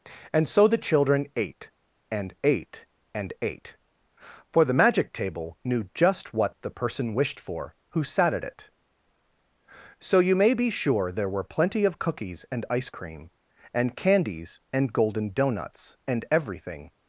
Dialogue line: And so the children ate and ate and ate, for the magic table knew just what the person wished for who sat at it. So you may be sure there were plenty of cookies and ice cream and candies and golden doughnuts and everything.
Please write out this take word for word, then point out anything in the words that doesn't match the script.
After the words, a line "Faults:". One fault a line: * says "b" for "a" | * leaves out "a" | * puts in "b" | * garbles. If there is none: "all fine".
And so the children ate and ate and ate, for the magic table knew just what the person wished for who sat at it. So you may be sure there were plenty of cookies and ice cream and candies and golden doughnuts and everything.
Faults:
all fine